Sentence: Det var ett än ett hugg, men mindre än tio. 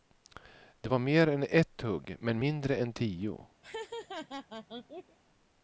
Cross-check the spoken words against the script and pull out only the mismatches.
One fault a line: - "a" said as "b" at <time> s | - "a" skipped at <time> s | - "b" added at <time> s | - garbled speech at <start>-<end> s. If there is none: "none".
- "ett" said as "mer" at 1.0 s